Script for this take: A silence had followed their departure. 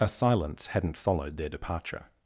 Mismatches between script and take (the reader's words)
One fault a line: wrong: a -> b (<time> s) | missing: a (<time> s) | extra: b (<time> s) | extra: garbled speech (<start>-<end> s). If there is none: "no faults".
wrong: had -> hadn't (0.7 s)